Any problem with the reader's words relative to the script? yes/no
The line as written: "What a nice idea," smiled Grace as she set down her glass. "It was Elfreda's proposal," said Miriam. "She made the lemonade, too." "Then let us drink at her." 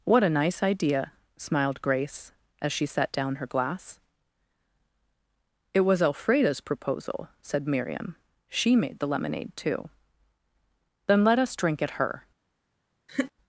no